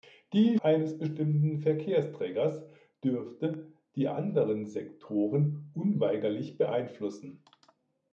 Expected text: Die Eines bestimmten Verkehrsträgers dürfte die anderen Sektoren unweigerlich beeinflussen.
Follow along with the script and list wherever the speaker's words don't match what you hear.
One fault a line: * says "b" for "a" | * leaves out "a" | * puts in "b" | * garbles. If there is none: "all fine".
all fine